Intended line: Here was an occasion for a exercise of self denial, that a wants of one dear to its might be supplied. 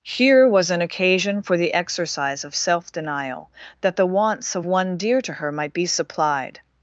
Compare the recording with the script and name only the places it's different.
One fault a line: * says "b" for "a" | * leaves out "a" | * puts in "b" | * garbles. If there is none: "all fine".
* says "the" for "a"
* says "the" for "a"
* says "her" for "its"